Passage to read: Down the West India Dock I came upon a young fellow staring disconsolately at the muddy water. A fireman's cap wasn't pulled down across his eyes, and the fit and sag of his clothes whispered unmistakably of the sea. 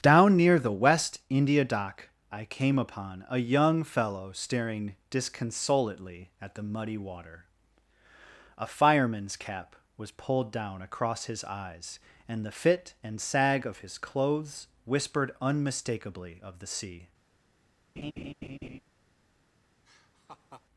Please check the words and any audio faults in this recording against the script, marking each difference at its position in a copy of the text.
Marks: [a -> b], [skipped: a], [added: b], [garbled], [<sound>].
Down [added: near] the West India Dock I came upon a young fellow staring disconsolately at the muddy water. A fireman's cap [wasn't -> was] pulled down across his eyes, and the fit and sag of his clothes whispered unmistakably of the sea. [laugh] [laugh]